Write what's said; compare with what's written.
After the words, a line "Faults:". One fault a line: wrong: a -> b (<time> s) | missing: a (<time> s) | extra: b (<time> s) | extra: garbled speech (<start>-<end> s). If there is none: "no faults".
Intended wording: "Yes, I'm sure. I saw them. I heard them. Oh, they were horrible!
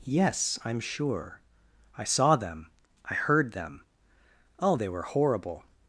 "Yes, I'm sure. I saw them. I heard them. Oh, they were horrible!
Faults:
no faults